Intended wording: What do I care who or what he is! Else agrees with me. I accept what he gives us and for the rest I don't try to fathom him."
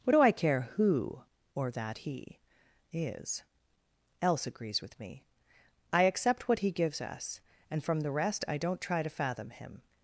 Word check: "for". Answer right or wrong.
wrong